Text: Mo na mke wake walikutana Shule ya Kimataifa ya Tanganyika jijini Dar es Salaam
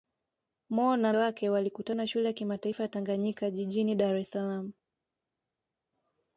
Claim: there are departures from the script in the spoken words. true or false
true